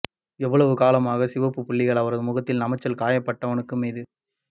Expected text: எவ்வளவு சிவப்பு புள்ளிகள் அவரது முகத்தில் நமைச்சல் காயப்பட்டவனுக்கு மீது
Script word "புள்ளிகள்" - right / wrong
right